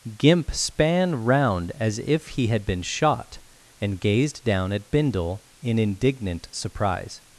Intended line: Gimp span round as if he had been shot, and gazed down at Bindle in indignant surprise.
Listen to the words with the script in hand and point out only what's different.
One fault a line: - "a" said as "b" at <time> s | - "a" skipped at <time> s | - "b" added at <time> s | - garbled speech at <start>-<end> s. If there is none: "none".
none